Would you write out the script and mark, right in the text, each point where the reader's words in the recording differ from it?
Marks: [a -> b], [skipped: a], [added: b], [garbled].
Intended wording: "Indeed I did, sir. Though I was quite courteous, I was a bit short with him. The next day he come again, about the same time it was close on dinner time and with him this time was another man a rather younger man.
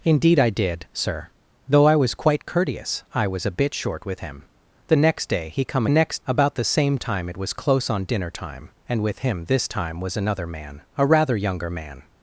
"Indeed I did, sir. Though I was quite courteous, I was a bit short with him. The next day he come [again, -> next] about the same time it was close on dinner time and with him this time was another man a rather younger man.